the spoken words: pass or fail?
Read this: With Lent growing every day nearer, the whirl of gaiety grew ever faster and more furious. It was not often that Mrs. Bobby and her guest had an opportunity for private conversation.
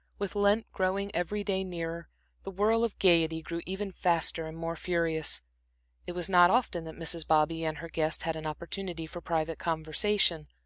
pass